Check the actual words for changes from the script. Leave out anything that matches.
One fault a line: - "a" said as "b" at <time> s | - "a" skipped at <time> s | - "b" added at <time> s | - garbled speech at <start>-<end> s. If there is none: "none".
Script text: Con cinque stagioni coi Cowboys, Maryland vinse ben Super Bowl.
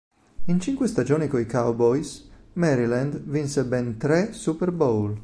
- "Con" said as "In" at 0.5 s
- "tre" added at 4.0 s